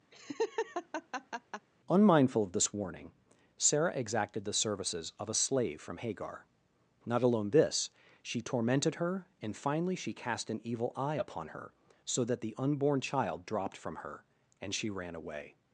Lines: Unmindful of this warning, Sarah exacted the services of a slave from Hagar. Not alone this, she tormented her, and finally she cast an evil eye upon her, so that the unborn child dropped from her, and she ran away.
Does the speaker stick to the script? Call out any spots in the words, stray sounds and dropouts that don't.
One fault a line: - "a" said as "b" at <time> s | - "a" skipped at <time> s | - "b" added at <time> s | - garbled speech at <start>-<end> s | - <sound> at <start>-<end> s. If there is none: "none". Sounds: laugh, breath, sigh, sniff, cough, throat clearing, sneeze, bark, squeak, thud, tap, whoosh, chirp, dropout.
- laugh at 0.1-1.7 s